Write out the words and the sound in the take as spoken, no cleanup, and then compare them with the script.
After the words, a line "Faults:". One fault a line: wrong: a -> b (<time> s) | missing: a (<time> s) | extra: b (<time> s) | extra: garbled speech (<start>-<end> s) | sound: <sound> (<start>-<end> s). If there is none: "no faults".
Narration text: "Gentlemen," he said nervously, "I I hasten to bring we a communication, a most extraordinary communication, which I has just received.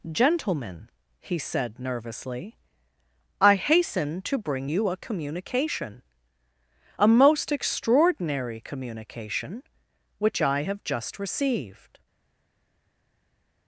"Gentlemen," he said nervously, "I hasten to bring you a communication, a most extraordinary communication, which I have just received.
Faults:
missing: I (3.5 s)
wrong: we -> you (4.7 s)
wrong: has -> have (10.6 s)